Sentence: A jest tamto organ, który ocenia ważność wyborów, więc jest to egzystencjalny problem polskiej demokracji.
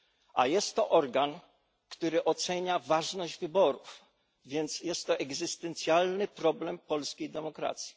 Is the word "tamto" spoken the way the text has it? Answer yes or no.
no